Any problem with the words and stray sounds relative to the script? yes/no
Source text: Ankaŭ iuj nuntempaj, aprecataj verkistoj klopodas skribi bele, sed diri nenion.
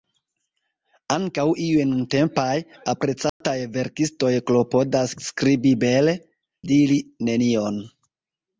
yes